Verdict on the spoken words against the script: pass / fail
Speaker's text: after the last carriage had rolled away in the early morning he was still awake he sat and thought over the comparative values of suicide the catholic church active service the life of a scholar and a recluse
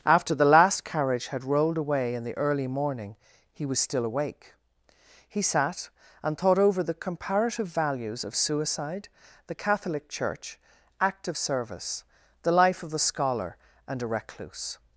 fail